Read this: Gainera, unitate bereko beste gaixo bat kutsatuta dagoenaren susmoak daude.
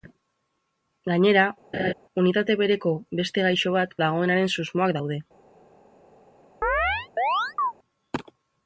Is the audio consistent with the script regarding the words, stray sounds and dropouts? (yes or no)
no